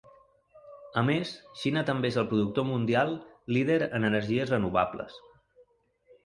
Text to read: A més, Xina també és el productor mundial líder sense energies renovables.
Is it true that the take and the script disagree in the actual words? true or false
true